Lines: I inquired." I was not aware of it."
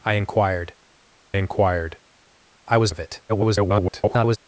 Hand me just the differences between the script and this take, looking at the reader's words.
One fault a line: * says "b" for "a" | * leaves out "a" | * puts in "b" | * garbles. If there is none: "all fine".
* puts in "inquired"
* leaves out "not aware"
* garbles